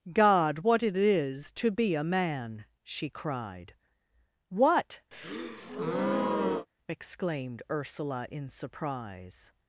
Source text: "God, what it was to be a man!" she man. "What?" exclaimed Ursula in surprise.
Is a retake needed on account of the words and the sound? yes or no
yes